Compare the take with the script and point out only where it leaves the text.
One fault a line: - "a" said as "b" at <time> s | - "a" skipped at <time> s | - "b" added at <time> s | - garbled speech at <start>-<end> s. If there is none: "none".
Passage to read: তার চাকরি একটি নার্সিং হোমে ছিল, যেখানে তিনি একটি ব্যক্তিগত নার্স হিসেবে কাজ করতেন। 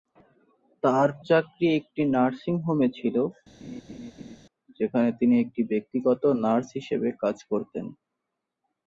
none